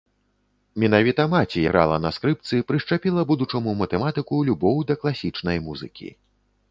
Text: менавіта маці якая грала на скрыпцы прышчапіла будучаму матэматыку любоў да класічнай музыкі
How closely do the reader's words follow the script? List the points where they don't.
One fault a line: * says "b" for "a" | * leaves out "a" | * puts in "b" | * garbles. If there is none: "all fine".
* leaves out "якая"